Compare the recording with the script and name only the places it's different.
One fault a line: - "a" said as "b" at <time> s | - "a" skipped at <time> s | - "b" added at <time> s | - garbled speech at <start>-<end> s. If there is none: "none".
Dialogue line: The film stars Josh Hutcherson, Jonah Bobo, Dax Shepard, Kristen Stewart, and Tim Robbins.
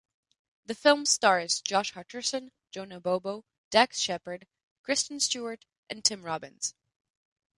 none